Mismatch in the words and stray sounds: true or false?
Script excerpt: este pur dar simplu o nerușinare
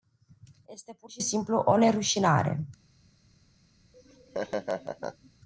true